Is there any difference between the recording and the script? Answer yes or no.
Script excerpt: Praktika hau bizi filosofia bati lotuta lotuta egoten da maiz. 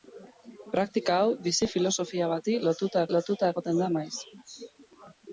no